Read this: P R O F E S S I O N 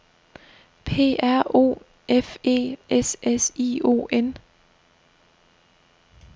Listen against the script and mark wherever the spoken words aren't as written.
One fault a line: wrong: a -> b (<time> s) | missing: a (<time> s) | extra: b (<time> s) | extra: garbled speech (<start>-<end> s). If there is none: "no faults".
no faults